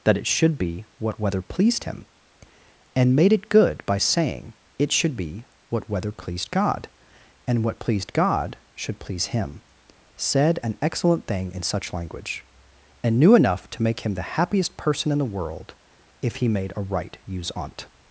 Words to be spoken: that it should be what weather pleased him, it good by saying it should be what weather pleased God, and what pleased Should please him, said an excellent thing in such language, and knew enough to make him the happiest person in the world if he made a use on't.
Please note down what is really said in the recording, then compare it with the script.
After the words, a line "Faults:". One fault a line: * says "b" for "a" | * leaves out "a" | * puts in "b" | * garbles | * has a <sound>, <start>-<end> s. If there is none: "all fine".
that it should be what weather pleased him, and made it good by saying it should be what weather pleased God, and what pleased God should please him, said an excellent thing in such language, and knew enough to make him the happiest person in the world if he made a right use on't.
Faults:
* puts in "and made"
* puts in "God"
* puts in "right"